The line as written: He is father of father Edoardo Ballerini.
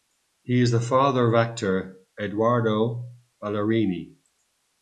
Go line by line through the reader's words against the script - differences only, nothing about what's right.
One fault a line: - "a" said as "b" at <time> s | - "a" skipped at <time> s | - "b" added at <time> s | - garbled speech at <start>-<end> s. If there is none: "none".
- "the" added at 0.7 s
- "father" said as "actor" at 1.4 s